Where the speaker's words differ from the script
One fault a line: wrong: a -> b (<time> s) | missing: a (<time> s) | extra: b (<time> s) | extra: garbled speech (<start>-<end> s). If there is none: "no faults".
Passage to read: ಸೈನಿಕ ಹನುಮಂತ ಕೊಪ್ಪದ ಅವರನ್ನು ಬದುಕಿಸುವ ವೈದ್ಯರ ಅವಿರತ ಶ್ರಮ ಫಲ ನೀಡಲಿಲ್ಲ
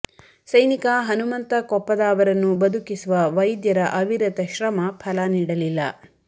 no faults